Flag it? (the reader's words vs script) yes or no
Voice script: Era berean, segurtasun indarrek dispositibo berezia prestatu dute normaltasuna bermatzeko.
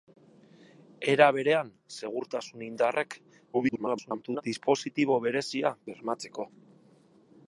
yes